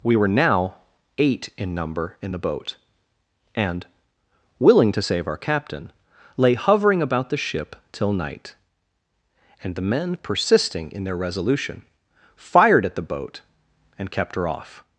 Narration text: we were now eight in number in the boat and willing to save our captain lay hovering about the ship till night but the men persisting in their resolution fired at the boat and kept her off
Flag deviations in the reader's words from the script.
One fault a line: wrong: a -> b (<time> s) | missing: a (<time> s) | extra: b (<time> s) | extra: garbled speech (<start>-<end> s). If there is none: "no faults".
wrong: but -> and (9.6 s)